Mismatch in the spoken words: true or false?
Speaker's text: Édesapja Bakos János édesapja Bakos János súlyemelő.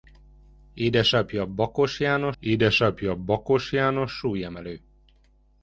false